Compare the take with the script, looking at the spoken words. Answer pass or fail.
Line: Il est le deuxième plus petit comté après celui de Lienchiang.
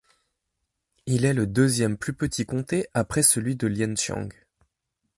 pass